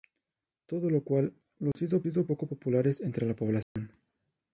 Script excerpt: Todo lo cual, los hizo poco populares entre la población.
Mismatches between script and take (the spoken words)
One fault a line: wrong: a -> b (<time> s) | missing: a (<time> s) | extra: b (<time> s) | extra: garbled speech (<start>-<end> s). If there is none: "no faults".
extra: hizo (2.1 s)